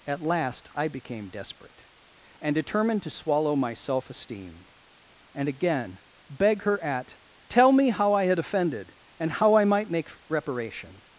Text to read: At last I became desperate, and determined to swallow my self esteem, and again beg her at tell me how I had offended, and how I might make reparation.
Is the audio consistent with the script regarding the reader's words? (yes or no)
yes